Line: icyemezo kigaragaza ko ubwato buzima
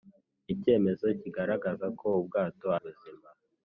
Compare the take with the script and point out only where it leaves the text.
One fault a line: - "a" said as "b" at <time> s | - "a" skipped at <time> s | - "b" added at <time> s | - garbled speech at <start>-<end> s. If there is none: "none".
none